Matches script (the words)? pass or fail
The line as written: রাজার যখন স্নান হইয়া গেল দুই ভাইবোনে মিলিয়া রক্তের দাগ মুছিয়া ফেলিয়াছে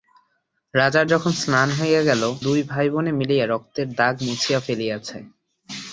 pass